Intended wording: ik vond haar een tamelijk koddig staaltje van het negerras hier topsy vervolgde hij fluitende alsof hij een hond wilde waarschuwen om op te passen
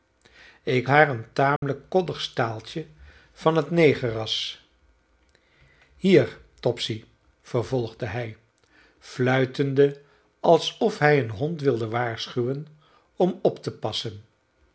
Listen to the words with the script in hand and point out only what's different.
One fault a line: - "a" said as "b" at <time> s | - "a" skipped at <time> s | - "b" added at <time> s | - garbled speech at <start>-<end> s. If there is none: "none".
- "vond" skipped at 0.9 s